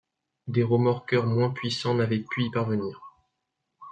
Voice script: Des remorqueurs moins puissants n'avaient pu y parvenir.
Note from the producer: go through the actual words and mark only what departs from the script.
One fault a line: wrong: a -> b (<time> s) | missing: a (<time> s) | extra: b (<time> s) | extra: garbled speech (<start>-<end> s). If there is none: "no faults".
no faults